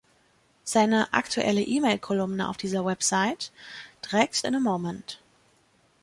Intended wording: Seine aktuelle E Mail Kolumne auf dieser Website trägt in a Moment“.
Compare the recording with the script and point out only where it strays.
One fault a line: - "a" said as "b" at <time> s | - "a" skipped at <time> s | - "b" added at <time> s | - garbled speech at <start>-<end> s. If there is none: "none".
none